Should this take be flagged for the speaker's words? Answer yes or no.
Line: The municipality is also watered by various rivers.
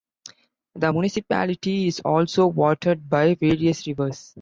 no